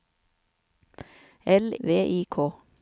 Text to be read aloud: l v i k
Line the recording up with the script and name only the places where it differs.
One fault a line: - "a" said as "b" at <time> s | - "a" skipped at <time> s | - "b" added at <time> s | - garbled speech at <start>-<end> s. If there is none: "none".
none